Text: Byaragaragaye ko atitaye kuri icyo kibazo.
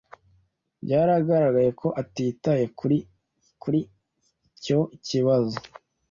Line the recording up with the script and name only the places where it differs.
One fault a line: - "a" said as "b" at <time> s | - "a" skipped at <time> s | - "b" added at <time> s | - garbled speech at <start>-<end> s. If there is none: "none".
- "kuri" added at 3.6 s